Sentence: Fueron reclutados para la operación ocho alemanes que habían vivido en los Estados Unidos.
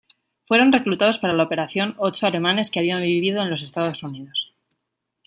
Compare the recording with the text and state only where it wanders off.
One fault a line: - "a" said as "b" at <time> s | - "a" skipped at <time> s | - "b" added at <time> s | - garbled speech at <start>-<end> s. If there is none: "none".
none